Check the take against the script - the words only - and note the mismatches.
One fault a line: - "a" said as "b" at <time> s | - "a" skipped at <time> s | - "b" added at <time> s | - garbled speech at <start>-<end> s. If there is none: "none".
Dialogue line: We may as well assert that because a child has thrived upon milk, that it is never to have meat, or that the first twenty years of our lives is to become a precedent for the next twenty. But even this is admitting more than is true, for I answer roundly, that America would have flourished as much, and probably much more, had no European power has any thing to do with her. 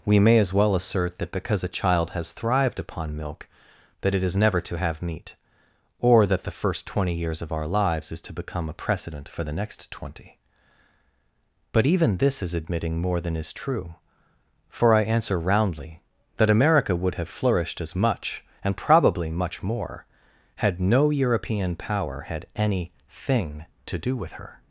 - "has" said as "had" at 22.2 s